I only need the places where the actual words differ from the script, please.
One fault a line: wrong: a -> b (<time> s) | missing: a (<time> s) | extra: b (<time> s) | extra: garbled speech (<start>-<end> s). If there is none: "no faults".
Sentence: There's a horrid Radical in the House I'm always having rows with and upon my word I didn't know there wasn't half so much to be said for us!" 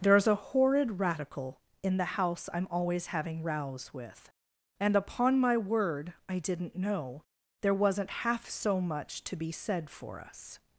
no faults